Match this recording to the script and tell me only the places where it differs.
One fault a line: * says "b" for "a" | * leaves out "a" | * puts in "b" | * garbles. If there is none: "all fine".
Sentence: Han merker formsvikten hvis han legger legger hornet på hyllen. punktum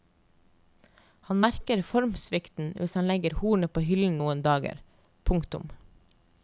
* leaves out "legger"
* puts in "noen dager"